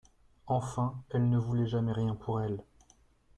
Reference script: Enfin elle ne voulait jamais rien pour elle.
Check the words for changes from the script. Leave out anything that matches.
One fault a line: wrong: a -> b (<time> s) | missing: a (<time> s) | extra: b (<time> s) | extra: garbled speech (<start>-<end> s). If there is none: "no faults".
no faults